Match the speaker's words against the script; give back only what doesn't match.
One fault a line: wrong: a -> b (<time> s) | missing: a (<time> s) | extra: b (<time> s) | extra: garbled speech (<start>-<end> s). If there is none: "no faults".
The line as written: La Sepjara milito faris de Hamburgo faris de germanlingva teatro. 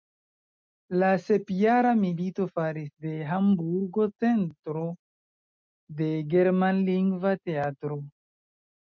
wrong: faris -> centro (4.2 s)